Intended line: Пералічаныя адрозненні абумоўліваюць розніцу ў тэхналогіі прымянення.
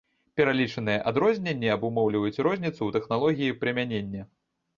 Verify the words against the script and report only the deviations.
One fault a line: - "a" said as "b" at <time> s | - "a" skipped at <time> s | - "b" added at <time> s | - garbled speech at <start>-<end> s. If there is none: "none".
none